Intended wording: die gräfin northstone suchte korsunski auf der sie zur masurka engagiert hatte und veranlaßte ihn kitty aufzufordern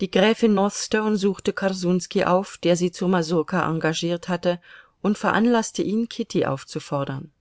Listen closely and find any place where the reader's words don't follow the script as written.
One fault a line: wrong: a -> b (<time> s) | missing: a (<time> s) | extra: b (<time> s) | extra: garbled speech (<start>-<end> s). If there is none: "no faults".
no faults